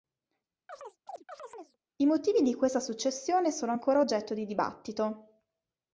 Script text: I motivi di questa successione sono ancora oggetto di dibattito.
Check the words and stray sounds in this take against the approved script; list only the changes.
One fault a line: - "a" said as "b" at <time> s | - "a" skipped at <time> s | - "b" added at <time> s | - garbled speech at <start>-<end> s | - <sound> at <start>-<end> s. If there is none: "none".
- chirp at 0.7-1.8 s